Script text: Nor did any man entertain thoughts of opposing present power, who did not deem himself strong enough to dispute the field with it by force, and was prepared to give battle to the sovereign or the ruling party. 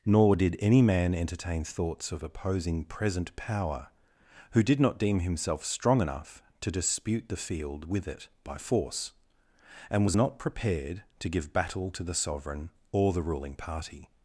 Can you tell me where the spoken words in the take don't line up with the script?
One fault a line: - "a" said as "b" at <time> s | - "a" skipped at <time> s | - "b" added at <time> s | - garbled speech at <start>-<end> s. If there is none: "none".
- "not" added at 10.1 s